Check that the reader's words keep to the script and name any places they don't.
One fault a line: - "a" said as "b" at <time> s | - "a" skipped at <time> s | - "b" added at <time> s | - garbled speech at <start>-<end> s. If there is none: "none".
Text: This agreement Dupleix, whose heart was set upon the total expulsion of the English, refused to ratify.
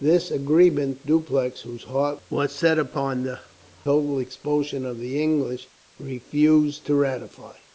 none